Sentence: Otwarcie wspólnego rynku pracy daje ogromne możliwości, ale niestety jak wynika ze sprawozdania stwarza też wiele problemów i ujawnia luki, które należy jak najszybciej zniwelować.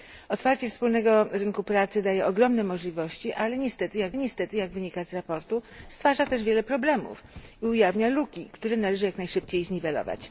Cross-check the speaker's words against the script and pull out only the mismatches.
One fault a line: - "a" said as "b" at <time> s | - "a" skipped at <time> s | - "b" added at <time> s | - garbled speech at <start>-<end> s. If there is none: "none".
- "niestety jak" added at 4.2 s